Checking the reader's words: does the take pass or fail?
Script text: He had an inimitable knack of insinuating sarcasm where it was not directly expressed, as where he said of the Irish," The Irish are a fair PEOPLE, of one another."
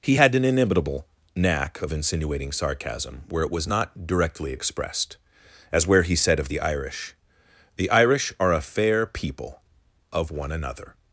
pass